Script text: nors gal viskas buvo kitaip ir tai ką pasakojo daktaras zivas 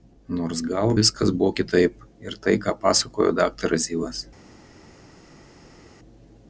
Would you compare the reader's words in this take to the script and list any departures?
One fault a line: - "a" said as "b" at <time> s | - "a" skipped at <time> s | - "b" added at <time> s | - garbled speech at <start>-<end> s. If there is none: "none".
none